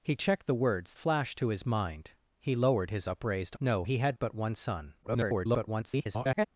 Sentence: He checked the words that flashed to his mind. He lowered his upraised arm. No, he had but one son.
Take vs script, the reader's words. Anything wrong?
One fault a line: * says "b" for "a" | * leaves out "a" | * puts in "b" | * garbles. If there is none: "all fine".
* leaves out "that"
* leaves out "arm"
* garbles